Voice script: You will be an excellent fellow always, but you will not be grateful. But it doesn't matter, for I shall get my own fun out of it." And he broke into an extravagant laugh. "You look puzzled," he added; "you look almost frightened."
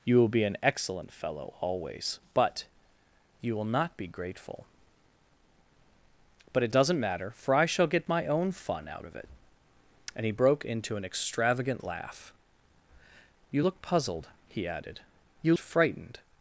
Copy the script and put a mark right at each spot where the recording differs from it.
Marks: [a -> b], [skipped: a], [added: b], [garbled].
You will be an excellent fellow always, but you will not be grateful. But it doesn't matter, for I shall get my own fun out of it." And he broke into an extravagant laugh. "You look puzzled," he added; "you [skipped: look almost] frightened."